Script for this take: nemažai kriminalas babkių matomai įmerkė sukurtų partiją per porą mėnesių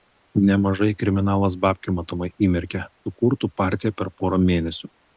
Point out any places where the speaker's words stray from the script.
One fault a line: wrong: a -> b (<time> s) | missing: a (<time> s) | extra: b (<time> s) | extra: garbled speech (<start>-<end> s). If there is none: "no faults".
no faults